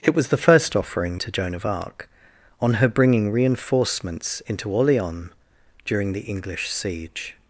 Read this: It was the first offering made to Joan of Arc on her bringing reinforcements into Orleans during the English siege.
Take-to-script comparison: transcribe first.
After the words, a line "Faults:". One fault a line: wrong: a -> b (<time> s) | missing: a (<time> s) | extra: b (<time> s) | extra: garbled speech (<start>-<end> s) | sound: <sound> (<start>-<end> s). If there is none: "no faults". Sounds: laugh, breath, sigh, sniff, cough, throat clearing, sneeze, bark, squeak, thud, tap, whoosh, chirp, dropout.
It was the first offering to Joan of Arc on her bringing reinforcements into Orleans during the English siege.
Faults:
missing: made (1.2 s)